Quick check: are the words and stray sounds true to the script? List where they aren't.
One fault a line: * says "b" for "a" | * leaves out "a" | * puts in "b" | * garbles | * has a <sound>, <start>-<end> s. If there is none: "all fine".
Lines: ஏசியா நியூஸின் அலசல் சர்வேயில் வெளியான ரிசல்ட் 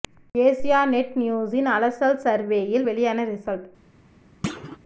* puts in "நெட்"
* has a thud, 4.4-4.8 s